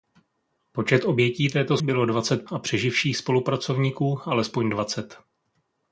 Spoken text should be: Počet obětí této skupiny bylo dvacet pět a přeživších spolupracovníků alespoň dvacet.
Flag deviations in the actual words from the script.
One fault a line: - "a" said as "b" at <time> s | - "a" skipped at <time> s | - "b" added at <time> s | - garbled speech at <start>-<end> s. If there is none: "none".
- "skupiny" skipped at 1.8 s
- "pět" skipped at 2.5 s